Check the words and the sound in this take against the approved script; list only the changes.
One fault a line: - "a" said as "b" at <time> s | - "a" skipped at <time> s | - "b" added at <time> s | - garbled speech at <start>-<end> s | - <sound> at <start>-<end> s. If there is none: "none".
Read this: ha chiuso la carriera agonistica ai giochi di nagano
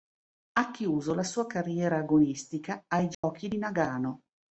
- "sua" added at 1.2 s
- dropout at 3.1-3.2 s